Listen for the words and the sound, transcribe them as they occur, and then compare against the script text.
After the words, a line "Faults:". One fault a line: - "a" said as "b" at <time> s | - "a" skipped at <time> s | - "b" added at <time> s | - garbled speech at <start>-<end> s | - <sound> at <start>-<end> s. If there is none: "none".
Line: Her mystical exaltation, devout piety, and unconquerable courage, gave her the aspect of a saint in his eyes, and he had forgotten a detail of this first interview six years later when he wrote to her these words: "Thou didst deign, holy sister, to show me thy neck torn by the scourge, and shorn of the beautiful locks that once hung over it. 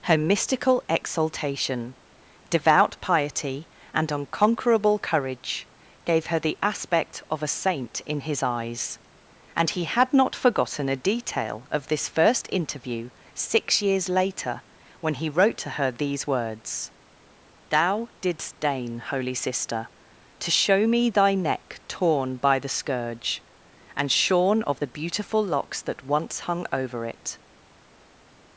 Her mystical exaltation, devout piety, and unconquerable courage, gave her the aspect of a saint in his eyes, and he had not forgotten a detail of this first interview six years later when he wrote to her these words: "Thou didst deign, holy sister, to show me thy neck torn by the scourge, and shorn of the beautiful locks that once hung over it.
Faults:
- "not" added at 10.1 s